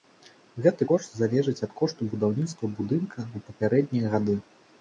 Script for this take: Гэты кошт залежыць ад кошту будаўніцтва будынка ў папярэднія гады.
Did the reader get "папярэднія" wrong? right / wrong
right